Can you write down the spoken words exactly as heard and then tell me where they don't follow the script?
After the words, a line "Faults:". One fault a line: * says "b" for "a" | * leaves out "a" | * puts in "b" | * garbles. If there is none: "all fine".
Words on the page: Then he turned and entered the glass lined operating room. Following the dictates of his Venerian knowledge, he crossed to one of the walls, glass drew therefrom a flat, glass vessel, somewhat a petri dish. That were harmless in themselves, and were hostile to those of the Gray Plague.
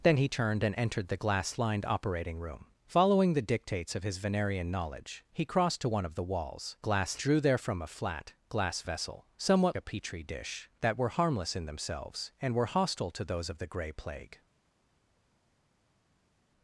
Then he turned and entered the glass lined operating room. Following the dictates of his Venerian knowledge, he crossed to one of the walls, glass drew therefrom a flat, glass vessel, somewhat a petri dish. That were harmless in themselves, and were hostile to those of the Gray Plague.
Faults:
all fine